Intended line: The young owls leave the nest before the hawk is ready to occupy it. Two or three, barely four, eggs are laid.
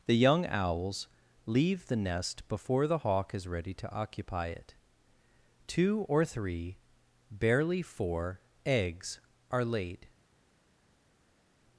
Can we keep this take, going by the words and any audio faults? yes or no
yes